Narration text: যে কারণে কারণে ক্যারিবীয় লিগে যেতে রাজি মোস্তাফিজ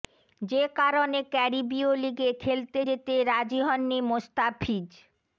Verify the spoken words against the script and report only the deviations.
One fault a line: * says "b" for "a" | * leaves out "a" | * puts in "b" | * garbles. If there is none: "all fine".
* leaves out "কারণে"
* puts in "খেলতে"
* puts in "হননি"